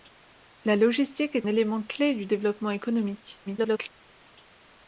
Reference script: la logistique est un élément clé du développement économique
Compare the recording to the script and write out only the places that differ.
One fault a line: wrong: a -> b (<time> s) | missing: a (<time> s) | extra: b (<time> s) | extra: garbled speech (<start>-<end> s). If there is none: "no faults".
missing: un (1.5 s)
extra: garbled speech (3.5-3.9 s)